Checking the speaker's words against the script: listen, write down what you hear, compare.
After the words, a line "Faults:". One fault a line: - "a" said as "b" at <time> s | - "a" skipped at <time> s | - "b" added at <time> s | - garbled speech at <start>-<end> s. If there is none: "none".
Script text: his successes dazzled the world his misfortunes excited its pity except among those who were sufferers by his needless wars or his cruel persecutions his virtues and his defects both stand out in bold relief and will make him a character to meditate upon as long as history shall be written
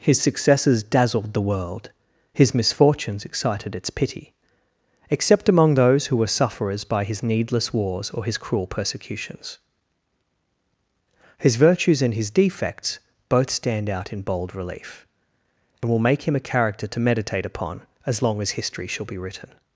his successes dazzled the world his misfortunes excited its pity except among those who were sufferers by his needless wars or his cruel persecutions his virtues and his defects both stand out in bold relief and will make him a character to meditate upon as long as history shall be written
Faults:
none